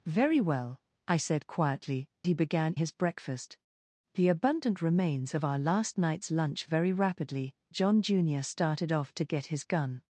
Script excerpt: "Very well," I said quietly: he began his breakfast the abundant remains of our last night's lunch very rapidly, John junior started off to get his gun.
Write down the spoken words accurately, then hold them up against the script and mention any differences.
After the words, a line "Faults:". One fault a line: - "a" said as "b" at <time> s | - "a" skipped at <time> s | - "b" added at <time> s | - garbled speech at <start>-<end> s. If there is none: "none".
"Very well," I said quietly: he began his breakfast the abundant remains of our last night's lunch very rapidly, John junior started off to get his gun.
Faults:
none